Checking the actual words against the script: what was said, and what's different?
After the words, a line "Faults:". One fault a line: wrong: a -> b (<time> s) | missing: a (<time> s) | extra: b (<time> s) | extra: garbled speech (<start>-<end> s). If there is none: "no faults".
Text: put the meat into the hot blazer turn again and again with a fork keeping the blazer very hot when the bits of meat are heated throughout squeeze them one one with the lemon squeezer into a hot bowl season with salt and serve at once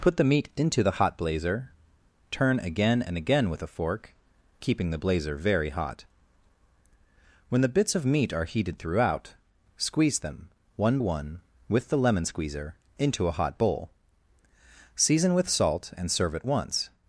put the meat into the hot blazer turn again and again with a fork keeping the blazer very hot when the bits of meat are heated throughout squeeze them one one with the lemon squeezer into a hot bowl season with salt and serve at once
Faults:
no faults